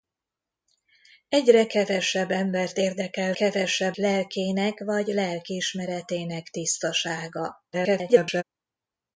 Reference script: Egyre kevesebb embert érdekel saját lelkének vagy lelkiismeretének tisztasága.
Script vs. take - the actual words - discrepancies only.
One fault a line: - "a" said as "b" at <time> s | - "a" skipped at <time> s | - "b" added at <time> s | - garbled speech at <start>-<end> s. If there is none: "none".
- "saját" said as "kevesebb" at 3.3 s
- garbled speech at 7.7-8.4 s